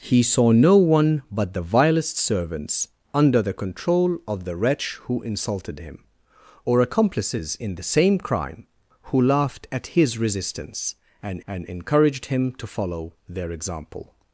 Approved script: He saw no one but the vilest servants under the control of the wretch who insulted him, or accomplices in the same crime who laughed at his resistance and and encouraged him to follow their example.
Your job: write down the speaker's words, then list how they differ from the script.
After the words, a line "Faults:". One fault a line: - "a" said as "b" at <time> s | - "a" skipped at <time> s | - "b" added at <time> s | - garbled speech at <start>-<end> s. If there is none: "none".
He saw no one but the vilest servants under the control of the wretch who insulted him, or accomplices in the same crime who laughed at his resistance and and encouraged him to follow their example.
Faults:
none